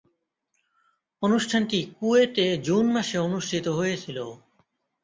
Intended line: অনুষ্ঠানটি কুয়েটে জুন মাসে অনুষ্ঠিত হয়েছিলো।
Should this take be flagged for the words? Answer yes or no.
no